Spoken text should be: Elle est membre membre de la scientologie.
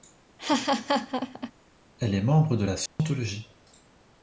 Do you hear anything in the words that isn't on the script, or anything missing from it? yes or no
yes